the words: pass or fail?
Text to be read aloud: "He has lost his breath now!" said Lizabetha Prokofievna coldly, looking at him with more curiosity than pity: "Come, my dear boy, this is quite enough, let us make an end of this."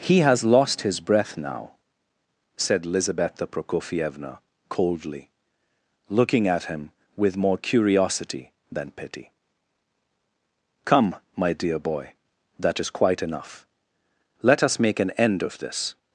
fail